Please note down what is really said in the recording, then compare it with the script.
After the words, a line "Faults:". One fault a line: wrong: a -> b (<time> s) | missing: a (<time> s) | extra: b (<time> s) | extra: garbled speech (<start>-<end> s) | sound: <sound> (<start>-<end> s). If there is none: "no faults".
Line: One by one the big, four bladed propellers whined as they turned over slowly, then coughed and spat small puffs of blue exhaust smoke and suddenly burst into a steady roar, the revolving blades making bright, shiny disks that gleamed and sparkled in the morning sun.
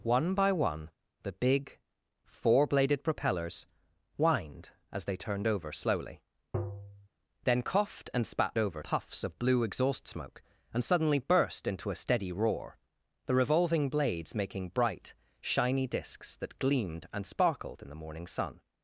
One by one the big, four bladed propellers whined as they turned over slowly, then coughed and spat over puffs of blue exhaust smoke and suddenly burst into a steady roar, the revolving blades making bright, shiny disks that gleamed and sparkled in the morning sun.
Faults:
sound: tap (6.5-7.1 s)
wrong: small -> over (8.6 s)